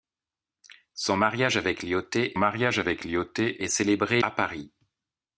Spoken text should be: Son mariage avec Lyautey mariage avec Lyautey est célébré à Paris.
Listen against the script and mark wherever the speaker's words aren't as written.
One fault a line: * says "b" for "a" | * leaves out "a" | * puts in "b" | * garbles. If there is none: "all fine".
all fine